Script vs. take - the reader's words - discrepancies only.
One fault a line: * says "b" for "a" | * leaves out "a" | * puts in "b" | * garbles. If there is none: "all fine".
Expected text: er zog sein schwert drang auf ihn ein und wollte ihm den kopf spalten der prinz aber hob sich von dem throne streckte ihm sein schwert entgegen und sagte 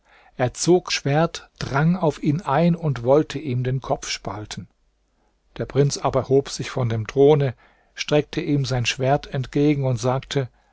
* leaves out "sein"